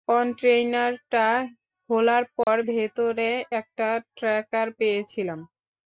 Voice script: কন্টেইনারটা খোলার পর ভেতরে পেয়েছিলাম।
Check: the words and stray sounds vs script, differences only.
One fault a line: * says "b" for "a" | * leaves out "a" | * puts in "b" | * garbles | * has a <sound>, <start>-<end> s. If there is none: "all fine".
* has a dropout, 2.4-2.5 s
* puts in "একটা ট্র্যাকার"